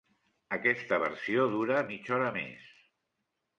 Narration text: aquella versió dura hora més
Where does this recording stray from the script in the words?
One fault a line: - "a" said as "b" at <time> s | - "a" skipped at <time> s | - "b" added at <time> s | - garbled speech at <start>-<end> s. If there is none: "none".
- "aquella" said as "aquesta" at 0.6 s
- "mitja" added at 1.9 s